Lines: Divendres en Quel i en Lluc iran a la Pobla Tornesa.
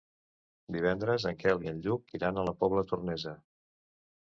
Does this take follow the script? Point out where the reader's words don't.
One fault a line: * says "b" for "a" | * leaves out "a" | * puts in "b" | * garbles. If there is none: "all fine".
all fine